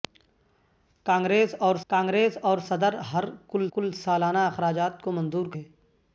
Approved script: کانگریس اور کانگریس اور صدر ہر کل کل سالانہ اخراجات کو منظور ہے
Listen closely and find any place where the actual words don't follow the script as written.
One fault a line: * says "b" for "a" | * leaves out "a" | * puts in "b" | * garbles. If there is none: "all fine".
all fine